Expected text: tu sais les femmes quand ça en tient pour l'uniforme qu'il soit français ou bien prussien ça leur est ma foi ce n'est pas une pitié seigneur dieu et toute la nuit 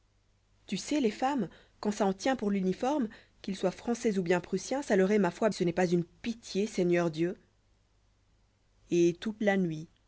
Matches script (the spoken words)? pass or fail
pass